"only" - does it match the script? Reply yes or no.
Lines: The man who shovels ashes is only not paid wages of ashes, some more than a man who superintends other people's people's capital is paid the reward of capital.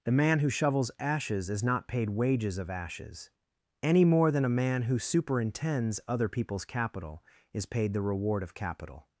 no